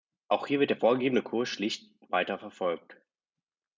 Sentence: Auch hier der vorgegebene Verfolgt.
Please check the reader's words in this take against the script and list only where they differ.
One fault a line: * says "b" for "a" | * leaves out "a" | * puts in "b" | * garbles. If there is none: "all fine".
* puts in "wird"
* puts in "Kurs schlicht weiter"